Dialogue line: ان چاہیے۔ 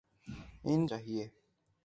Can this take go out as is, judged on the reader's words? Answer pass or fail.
pass